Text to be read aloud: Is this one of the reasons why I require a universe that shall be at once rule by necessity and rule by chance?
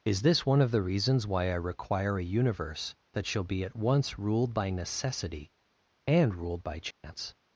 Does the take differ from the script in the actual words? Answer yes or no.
yes